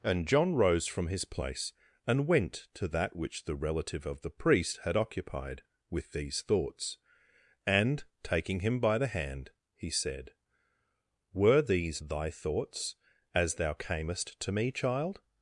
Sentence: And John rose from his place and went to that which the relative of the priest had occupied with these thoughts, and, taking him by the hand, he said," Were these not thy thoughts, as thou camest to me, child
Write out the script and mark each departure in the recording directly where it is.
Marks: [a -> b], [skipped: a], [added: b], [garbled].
And John rose from his place and went to that which the relative of the priest had occupied with these thoughts, and, taking him by the hand, he said," Were these [skipped: not] thy thoughts, as thou camest to me, child